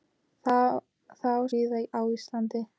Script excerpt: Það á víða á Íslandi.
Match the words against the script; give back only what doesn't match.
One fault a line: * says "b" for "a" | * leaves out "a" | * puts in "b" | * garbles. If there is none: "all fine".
all fine